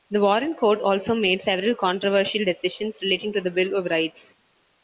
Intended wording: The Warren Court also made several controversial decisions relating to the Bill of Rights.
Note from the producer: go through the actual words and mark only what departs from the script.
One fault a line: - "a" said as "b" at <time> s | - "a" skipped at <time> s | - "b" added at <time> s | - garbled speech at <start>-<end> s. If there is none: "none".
none